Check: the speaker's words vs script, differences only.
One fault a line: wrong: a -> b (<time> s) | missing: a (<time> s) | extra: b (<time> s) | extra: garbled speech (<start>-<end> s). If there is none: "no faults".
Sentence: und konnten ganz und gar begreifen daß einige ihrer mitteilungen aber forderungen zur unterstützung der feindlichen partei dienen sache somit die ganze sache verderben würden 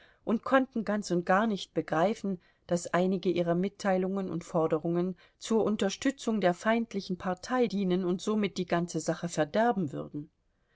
extra: nicht (1.4 s)
wrong: aber -> und (4.3 s)
wrong: sache -> und (8.0 s)